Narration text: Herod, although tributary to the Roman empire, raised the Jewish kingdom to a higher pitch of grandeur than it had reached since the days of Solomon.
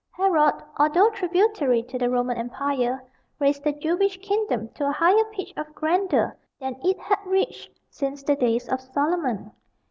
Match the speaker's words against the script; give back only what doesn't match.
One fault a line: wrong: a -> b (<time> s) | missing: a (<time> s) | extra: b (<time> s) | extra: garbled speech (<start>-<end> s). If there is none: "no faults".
no faults